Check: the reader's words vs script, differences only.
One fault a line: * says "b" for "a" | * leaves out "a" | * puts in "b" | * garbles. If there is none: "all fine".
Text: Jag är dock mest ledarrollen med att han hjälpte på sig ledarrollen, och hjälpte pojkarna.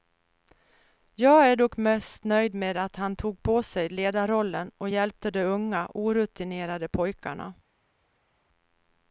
* says "nöjd" for "ledarrollen"
* says "tog" for "hjälpte"
* puts in "de unga orutinerade"